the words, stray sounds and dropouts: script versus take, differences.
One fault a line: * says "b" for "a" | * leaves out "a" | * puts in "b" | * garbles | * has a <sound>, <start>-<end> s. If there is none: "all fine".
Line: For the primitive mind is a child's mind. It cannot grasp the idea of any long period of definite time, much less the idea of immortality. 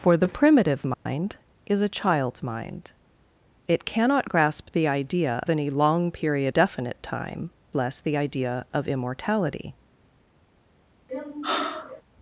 * has a dropout, 0.9-1.1 s
* leaves out "of"
* leaves out "of"
* leaves out "much"
* has a sigh, 11.1-12.0 s